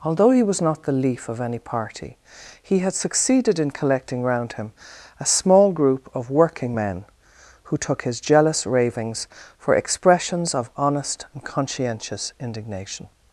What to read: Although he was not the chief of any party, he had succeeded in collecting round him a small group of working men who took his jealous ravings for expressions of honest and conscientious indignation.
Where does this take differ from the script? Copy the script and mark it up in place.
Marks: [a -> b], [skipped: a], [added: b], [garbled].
Although he was not the [chief -> leaf] of any party, he had succeeded in collecting round him a small group of working men who took his jealous ravings for expressions of honest and conscientious indignation.